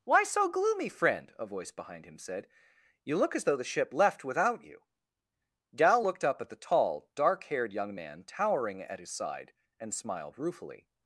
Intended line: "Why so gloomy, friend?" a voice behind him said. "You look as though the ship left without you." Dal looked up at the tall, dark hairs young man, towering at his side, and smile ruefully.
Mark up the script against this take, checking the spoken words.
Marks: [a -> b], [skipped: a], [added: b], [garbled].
"Why so gloomy, friend?" a voice behind him said. "You look as though the ship left without you." Dal looked up at the tall, dark [hairs -> haired] young man, towering at his side, and [smile -> smiled] ruefully.